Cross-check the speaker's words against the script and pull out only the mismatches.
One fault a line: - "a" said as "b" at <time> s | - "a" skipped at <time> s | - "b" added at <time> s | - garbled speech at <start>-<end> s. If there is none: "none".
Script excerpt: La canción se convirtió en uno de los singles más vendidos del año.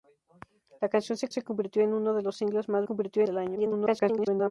- "se" added at 1.3 s
- "vendidos" said as "convirtió" at 2.8 s
- garbled speech at 3.6-4.5 s